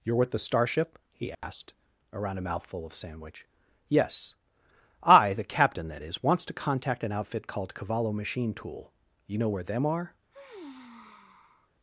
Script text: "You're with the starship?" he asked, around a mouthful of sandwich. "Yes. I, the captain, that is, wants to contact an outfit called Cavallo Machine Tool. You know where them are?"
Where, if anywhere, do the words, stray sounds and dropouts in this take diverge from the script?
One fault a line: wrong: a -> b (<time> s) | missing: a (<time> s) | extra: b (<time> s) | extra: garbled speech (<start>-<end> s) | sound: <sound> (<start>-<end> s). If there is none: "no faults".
sound: dropout (1.3-1.4 s)
sound: sigh (10.3-11.7 s)